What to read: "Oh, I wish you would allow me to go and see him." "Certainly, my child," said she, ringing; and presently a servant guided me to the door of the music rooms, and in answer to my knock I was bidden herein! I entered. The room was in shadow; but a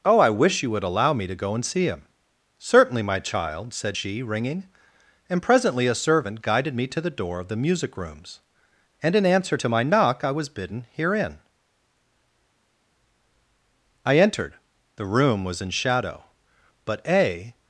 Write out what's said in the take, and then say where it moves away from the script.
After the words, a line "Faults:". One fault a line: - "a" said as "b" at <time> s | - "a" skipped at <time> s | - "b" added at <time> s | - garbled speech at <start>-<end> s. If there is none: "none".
"Oh, I wish you would allow me to go and see him." "Certainly, my child," said she, ringing; and presently a servant guided me to the door of the music rooms, and in answer to my knock I was bidden herein! I entered. The room was in shadow; but a
Faults:
none